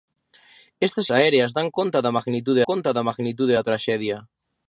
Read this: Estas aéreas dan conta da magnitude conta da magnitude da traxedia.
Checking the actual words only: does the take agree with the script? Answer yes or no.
yes